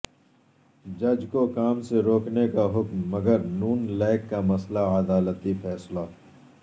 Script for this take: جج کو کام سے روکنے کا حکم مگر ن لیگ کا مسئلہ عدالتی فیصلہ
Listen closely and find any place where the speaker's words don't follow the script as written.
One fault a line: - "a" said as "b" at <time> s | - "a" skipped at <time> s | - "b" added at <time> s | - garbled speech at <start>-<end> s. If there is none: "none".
none